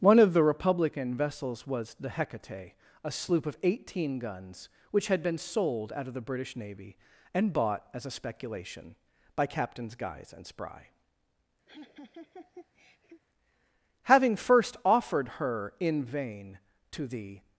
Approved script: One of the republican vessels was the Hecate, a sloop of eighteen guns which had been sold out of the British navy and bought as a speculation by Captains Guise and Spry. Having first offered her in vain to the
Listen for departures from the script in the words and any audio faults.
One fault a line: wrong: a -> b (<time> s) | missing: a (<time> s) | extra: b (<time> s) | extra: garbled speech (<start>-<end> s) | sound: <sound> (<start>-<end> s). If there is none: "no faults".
sound: laugh (11.7-13.2 s)